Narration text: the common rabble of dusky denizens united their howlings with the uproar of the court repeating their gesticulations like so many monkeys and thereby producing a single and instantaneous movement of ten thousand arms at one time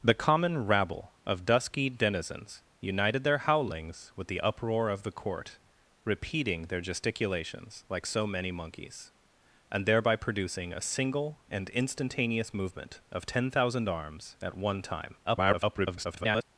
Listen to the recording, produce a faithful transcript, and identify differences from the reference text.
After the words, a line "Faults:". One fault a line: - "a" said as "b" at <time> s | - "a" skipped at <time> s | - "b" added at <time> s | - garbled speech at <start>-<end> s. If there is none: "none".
the common rabble of dusky denizens united their howlings with the uproar of the court repeating their gesticulations like so many monkeys and thereby producing a single and instantaneous movement of ten thousand arms at one time [garbled]
Faults:
- garbled speech at 15.2-16.4 s